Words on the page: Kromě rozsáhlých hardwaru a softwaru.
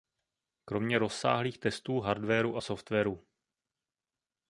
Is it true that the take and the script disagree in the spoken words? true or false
true